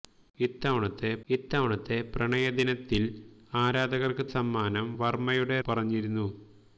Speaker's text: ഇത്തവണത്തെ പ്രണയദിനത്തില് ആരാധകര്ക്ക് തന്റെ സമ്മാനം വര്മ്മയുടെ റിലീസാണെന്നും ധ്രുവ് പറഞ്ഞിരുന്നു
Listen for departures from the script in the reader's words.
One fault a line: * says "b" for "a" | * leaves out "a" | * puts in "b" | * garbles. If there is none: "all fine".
* puts in "ഇത്തവണത്തെ"
* leaves out "തന്റെ"
* leaves out "റിലീസാണെന്നും ധ്രുവ്"